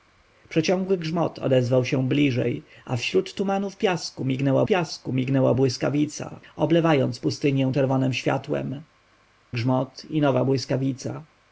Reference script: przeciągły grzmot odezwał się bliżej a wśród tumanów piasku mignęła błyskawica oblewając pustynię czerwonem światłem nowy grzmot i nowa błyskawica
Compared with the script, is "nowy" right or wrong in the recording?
wrong